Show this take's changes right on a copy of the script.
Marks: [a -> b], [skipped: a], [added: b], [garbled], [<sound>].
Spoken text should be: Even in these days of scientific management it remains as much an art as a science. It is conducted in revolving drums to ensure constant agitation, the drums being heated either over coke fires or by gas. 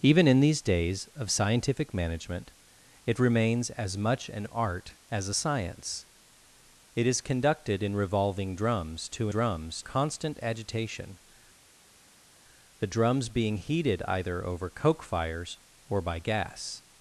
Even in these days of scientific management it remains as much an art as a science. It is conducted in revolving drums to [ensure -> drums] constant agitation, the drums being heated either over coke fires or by gas.